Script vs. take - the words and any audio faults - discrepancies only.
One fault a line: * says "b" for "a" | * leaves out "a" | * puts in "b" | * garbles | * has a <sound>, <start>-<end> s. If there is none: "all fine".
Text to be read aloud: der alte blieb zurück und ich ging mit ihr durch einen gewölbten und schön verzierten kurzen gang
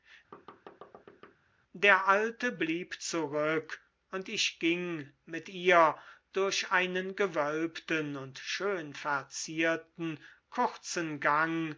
* has a thud, 0.3-1.4 s